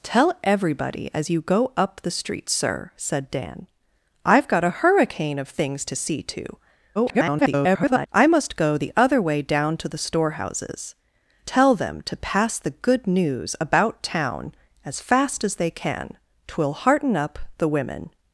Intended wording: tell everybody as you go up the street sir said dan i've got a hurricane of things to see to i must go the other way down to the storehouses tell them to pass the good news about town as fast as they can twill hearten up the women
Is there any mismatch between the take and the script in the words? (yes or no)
yes